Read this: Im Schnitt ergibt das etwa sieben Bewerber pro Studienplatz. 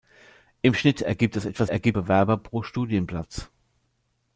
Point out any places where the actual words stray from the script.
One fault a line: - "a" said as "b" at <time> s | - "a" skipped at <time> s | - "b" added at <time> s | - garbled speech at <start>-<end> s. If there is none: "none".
- "sieben" said as "ergibt" at 1.7 s